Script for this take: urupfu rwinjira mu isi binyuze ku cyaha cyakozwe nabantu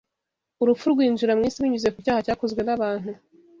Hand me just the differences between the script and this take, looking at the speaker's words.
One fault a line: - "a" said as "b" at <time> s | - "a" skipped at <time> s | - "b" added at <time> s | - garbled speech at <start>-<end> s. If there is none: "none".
none